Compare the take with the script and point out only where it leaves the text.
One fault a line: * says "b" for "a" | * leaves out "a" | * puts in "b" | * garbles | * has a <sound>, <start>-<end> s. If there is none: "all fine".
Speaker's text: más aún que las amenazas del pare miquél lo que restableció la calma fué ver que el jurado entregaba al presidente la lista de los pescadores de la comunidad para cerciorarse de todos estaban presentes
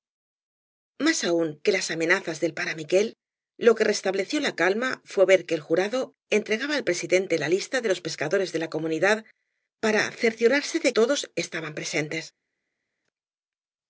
all fine